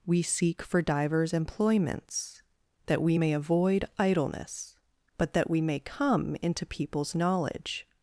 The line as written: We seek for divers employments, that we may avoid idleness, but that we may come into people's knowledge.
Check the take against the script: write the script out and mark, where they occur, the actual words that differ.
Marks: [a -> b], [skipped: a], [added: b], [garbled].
We seek for divers employments, that we may avoid idleness, but that we may come into people's knowledge.